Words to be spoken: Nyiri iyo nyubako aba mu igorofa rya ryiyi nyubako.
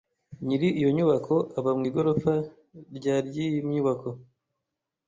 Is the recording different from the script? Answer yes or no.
no